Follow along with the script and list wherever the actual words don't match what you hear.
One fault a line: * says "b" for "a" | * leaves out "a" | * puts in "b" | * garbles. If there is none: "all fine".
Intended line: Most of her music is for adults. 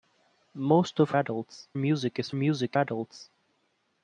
* says "adults" for "her"
* says "music" for "for"